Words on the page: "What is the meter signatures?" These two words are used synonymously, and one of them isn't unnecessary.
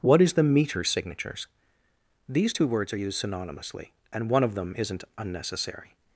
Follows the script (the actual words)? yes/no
yes